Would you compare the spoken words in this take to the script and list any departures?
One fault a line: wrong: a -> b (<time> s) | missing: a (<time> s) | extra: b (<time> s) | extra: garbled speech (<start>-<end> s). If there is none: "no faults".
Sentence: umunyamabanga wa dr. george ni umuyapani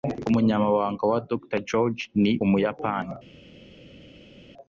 no faults